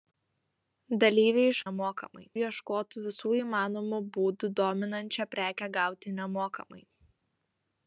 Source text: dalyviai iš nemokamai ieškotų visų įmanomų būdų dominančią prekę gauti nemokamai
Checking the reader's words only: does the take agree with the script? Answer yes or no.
yes